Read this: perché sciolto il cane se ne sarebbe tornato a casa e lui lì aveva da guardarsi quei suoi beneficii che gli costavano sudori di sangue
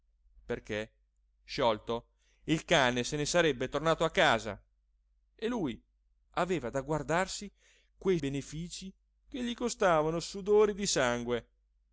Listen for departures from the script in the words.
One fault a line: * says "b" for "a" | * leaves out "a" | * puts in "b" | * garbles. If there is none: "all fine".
* leaves out "lì"
* leaves out "suoi"